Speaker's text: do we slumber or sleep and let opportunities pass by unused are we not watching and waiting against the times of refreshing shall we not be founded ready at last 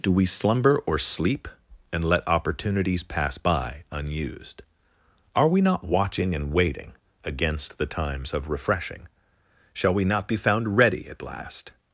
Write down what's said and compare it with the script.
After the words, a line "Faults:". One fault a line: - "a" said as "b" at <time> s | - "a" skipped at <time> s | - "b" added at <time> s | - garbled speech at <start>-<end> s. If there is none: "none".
do we slumber or sleep and let opportunities pass by unused are we not watching and waiting against the times of refreshing shall we not be found ready at last
Faults:
- "founded" said as "found" at 10.4 s